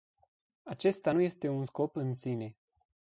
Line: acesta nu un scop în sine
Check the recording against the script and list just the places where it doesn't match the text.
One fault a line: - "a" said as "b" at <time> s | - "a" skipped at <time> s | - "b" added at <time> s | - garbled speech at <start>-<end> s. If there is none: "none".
- "este" added at 1.2 s